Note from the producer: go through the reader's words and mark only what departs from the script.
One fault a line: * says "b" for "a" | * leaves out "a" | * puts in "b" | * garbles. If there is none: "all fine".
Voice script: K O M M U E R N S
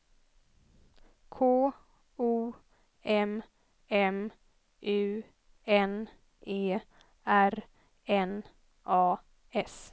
* puts in "N"
* puts in "A"